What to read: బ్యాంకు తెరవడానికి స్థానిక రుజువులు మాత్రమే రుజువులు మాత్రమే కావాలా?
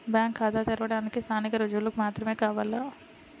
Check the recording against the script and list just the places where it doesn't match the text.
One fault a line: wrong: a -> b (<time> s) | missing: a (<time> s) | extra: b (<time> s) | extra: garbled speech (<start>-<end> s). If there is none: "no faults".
extra: ఖాతా (0.4 s)
missing: రుజువులు మాత్రమే (2.3 s)